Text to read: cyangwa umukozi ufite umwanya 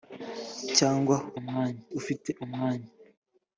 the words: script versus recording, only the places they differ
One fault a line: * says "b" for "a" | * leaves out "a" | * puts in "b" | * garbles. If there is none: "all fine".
* says "umwanya" for "umukozi"